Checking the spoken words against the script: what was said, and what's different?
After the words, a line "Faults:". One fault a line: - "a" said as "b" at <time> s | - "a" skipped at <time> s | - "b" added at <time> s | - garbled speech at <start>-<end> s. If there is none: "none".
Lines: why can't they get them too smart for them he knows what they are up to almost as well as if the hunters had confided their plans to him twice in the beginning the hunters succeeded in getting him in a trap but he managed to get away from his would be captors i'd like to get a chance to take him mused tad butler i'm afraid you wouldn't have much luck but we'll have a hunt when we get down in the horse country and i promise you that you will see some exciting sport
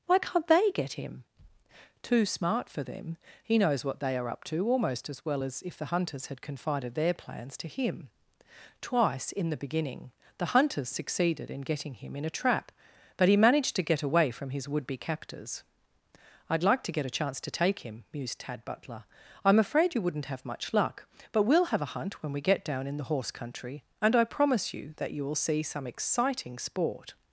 why can't they get him too smart for them he knows what they are up to almost as well as if the hunters had confided their plans to him twice in the beginning the hunters succeeded in getting him in a trap but he managed to get away from his would be captors i'd like to get a chance to take him mused tad butler i'm afraid you wouldn't have much luck but we'll have a hunt when we get down in the horse country and i promise you that you will see some exciting sport
Faults:
- "them" said as "him" at 0.9 s